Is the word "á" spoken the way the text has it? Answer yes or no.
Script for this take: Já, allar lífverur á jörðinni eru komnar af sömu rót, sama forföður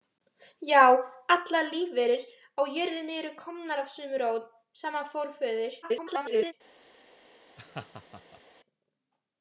yes